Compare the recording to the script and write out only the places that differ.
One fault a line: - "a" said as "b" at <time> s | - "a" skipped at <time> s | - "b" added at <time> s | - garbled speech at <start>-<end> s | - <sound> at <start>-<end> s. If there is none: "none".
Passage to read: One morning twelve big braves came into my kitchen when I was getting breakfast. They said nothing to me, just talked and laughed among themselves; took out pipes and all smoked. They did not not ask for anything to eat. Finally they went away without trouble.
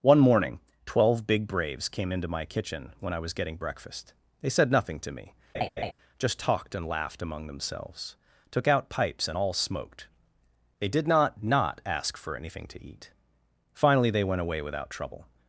- laugh at 5.5-5.9 s